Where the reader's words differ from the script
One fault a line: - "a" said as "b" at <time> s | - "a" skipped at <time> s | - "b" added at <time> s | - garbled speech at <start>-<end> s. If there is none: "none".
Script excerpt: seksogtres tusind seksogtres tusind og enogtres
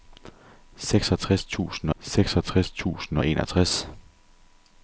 none